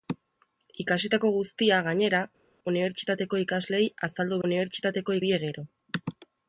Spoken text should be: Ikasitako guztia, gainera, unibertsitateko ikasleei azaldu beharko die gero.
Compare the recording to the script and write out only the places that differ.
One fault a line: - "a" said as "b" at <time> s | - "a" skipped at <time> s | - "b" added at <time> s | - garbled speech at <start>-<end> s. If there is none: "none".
- "beharko" said as "unibertsitateko" at 4.5 s